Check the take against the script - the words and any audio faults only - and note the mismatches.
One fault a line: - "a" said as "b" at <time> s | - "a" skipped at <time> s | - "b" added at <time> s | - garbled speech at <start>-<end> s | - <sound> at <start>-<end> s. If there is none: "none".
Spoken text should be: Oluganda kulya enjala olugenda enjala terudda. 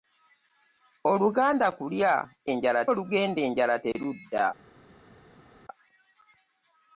none